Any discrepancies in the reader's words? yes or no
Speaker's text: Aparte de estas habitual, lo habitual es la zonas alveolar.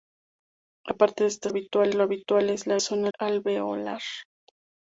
no